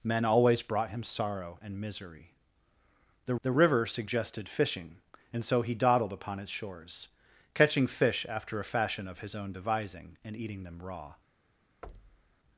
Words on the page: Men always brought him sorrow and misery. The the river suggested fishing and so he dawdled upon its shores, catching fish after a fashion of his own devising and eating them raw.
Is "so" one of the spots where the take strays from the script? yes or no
no